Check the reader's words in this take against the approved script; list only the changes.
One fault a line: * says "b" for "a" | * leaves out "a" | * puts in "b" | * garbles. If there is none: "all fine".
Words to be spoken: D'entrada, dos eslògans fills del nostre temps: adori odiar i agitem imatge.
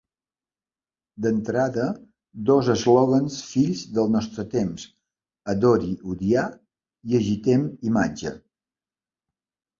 all fine